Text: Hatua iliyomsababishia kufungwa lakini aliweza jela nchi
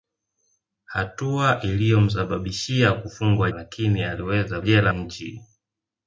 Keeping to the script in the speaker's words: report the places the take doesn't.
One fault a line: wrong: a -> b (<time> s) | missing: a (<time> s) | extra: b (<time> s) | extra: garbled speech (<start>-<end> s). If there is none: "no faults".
no faults